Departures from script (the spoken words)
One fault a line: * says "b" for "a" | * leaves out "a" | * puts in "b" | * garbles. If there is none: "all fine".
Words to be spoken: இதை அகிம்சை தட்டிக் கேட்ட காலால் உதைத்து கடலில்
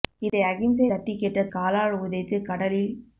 all fine